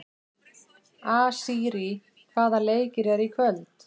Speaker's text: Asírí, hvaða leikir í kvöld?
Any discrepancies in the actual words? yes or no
yes